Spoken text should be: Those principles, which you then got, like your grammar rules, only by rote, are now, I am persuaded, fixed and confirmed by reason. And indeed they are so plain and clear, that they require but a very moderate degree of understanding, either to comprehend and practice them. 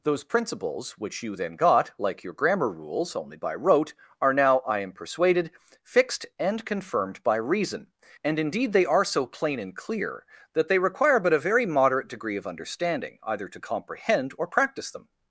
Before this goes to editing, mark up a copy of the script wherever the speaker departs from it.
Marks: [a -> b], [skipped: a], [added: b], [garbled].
Those principles, which you then got, like your grammar rules, only by rote, are now, I am persuaded, fixed and confirmed by reason. And indeed they are so plain and clear, that they require but a very moderate degree of understanding, either to comprehend [and -> or] practice them.